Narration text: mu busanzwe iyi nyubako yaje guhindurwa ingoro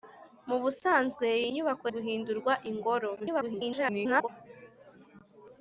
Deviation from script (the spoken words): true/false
true